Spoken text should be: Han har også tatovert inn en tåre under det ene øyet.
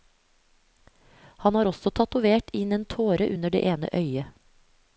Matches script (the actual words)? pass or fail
pass